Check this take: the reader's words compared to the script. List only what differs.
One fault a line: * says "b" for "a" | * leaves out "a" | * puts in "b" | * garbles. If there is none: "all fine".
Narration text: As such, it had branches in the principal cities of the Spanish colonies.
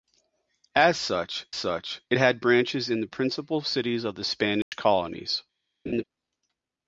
* puts in "such"